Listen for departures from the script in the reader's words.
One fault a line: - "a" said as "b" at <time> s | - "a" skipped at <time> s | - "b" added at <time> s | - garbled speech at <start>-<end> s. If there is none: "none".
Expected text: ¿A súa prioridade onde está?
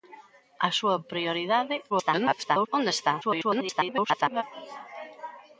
- garbled speech at 1.9-2.7 s
- garbled speech at 3.2-4.4 s